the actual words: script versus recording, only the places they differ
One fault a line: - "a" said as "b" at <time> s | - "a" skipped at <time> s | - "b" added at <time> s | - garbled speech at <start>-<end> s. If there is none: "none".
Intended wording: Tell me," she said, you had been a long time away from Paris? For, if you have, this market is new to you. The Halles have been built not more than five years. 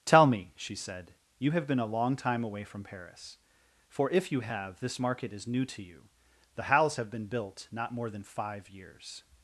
- "had" said as "have" at 1.5 s